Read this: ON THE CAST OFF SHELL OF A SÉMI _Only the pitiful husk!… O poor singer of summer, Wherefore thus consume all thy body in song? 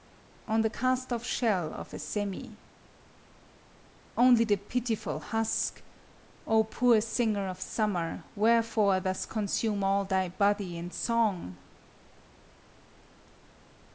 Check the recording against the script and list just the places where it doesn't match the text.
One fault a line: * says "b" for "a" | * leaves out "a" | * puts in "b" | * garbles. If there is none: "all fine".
all fine